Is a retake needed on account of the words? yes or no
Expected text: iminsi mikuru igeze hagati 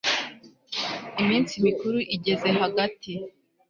no